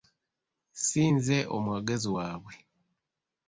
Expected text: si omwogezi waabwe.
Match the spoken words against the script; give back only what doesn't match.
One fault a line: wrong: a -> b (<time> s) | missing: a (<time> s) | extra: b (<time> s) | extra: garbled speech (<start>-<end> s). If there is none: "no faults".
extra: nze (1.1 s)